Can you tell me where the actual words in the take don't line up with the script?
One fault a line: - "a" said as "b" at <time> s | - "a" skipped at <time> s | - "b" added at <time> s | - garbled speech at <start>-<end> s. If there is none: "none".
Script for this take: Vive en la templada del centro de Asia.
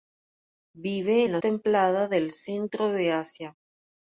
none